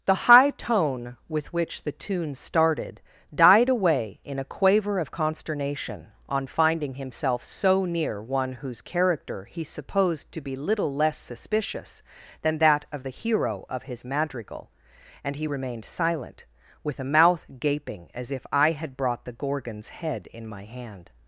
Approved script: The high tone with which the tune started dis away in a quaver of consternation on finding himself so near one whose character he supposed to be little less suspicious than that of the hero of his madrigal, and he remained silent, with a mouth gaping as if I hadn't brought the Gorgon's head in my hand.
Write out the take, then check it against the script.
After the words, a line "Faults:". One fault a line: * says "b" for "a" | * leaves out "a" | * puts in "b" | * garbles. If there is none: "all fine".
The high tone with which the tune started died away in a quaver of consternation on finding himself so near one whose character he supposed to be little less suspicious than that of the hero of his madrigal, and he remained silent, with a mouth gaping as if I had brought the Gorgon's head in my hand.
Faults:
* says "died" for "dis"
* says "had" for "hadn't"